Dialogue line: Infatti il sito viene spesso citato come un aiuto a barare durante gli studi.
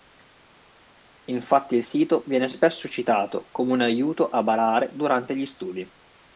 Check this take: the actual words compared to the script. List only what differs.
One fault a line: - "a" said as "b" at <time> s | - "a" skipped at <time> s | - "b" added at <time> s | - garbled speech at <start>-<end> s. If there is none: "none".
none